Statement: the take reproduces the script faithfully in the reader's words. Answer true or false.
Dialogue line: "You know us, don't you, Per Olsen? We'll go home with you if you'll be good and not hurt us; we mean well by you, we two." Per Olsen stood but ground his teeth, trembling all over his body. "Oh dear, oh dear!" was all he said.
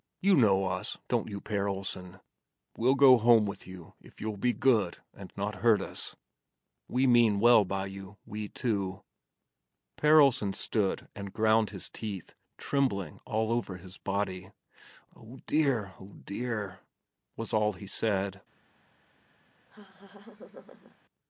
false